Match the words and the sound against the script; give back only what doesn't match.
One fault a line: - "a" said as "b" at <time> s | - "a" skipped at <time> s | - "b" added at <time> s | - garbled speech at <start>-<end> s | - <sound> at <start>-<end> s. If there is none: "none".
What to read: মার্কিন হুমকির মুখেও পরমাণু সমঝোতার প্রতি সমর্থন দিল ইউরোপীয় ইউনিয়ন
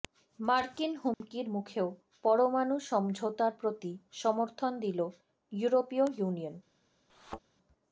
- dropout at 1.1-1.2 s
- thud at 7.1-7.4 s